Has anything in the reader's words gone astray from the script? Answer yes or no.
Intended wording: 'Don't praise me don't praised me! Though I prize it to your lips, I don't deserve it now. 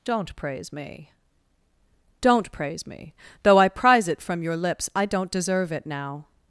yes